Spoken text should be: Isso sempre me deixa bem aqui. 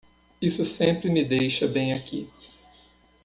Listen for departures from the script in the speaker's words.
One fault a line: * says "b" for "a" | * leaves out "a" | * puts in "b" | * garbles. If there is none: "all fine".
all fine